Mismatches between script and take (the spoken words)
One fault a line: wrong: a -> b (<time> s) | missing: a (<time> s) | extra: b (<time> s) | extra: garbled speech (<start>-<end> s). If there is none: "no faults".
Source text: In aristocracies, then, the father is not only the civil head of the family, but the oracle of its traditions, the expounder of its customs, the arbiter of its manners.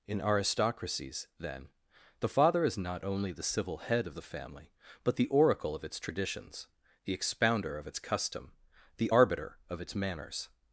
wrong: customs -> custom (8.0 s)